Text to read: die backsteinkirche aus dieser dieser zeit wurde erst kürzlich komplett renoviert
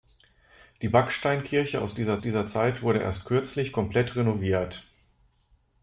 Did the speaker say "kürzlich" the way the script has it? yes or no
yes